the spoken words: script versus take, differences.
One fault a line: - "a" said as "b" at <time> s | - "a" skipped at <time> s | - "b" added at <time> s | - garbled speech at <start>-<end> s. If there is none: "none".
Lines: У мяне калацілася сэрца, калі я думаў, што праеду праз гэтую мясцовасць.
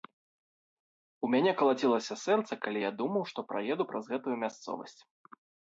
none